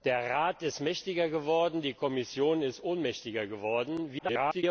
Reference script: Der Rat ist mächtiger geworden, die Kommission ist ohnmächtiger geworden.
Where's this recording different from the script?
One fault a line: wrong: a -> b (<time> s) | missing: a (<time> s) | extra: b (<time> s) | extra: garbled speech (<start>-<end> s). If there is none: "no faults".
extra: garbled speech (4.2-4.6 s)